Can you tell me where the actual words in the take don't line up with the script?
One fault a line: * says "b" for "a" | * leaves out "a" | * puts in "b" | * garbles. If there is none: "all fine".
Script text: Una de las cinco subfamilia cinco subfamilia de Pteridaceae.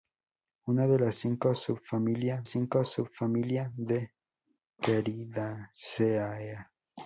all fine